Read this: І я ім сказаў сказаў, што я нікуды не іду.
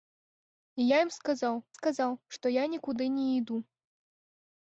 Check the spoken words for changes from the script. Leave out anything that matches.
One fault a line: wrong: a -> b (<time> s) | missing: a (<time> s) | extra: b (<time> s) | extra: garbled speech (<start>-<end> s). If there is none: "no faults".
no faults